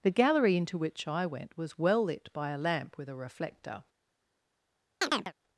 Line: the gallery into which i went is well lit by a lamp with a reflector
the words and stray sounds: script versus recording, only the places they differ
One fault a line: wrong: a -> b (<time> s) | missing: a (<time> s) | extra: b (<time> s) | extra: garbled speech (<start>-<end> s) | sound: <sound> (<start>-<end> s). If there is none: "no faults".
wrong: is -> was (1.6 s)
sound: chirp (5.0-5.3 s)